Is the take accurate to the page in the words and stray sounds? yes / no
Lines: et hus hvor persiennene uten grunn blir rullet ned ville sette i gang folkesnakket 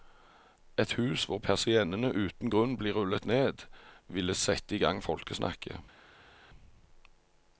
yes